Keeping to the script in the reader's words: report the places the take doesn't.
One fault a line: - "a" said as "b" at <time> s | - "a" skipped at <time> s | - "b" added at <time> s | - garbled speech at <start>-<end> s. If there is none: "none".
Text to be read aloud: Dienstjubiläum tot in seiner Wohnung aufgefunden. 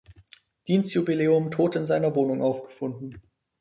none